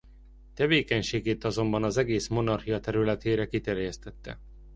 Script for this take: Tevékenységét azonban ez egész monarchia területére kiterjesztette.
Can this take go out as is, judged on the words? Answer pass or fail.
fail